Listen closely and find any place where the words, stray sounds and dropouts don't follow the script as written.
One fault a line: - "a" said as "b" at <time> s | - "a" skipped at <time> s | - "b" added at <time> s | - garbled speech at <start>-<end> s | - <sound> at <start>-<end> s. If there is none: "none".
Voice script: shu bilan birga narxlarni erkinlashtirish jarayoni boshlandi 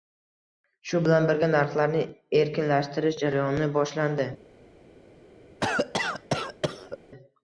- cough at 5.6-7.0 s